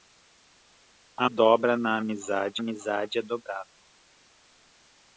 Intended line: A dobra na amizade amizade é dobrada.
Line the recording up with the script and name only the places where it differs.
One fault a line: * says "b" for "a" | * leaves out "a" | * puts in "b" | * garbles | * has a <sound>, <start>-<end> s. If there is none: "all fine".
all fine